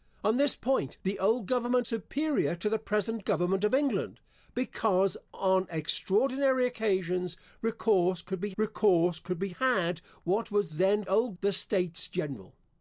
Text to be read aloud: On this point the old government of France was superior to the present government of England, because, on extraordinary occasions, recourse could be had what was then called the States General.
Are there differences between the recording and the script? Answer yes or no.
yes